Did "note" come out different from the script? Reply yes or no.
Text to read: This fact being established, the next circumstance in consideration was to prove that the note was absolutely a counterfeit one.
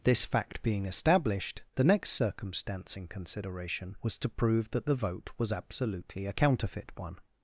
yes